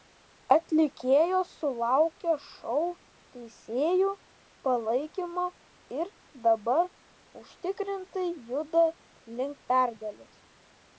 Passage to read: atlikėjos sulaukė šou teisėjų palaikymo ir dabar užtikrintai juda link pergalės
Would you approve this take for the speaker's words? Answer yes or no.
yes